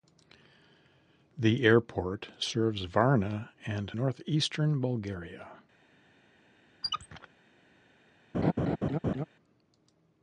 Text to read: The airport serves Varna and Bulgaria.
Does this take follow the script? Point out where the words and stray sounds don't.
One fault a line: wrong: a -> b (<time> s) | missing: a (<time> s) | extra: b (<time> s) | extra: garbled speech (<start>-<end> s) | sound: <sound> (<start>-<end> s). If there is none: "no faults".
extra: northeastern (3.9 s)
sound: squeak (6.8-7.3 s)
sound: laugh (8.3-9.2 s)